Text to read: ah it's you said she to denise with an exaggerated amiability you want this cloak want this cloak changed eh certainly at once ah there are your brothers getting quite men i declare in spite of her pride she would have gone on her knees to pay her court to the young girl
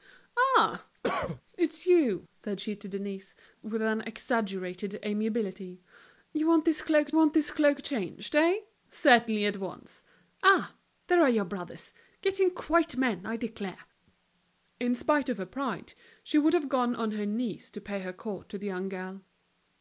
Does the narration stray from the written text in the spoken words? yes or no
no